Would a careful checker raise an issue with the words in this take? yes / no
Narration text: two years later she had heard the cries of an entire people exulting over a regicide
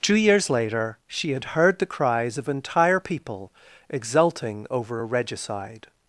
yes